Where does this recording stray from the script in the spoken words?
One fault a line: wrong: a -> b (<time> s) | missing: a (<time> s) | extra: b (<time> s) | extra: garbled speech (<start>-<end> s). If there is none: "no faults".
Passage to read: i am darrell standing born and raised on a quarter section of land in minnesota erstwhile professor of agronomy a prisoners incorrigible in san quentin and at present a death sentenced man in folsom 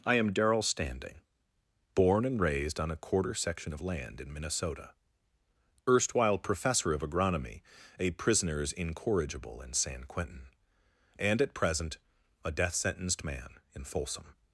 no faults